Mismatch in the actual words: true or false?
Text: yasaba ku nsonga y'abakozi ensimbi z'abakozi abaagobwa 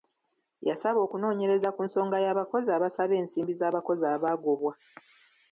true